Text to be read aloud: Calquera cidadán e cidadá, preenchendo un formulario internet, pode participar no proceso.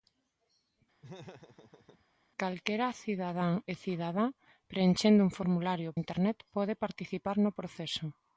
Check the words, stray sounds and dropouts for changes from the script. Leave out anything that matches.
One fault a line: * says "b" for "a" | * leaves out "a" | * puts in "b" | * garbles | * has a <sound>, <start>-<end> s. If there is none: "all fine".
* has a laugh, 1.0-2.1 s